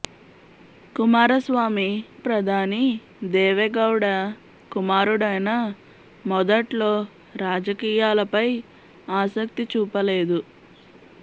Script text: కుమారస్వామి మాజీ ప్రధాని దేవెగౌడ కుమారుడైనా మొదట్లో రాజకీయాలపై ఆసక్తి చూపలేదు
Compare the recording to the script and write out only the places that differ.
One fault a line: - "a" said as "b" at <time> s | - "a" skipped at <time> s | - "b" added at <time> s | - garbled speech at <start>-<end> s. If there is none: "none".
- "మాజీ" skipped at 1.9 s